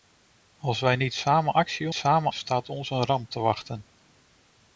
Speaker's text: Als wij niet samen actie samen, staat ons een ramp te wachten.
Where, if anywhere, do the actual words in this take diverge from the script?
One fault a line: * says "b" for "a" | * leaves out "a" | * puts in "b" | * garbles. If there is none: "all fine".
all fine